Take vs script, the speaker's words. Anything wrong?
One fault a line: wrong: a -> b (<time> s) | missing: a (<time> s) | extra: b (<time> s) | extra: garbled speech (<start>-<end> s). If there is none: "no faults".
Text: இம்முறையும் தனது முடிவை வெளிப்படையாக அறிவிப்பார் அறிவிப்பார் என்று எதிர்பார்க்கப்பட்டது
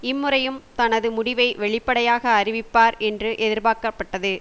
missing: அறிவிப்பார் (3.0 s)